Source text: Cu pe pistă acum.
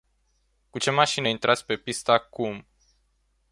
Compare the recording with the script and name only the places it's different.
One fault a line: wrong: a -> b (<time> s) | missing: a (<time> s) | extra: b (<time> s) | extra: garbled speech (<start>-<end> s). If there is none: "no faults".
extra: ce mașină intrați (0.7 s)